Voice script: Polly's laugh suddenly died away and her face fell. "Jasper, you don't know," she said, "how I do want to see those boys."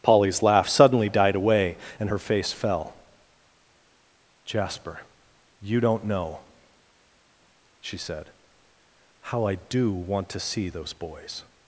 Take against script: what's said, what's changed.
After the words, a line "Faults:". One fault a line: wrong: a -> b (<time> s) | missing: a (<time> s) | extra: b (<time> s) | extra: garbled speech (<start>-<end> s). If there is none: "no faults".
Polly's laugh suddenly died away and her face fell. "Jasper, you don't know," she said, "how I do want to see those boys."
Faults:
no faults